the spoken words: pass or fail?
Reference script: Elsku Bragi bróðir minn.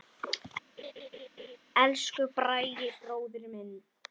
pass